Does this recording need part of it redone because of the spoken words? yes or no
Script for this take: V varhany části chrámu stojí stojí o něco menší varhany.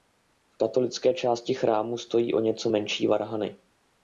yes